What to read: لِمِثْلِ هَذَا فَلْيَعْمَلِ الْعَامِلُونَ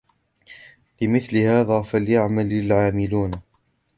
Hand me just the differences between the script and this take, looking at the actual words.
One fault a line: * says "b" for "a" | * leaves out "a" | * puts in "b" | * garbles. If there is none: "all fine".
all fine